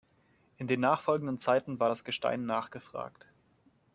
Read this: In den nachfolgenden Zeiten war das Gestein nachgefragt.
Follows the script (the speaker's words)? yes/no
yes